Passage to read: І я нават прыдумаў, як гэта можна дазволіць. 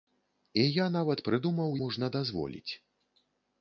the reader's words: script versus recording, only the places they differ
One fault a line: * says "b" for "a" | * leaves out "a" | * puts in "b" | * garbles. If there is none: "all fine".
* leaves out "як гэта"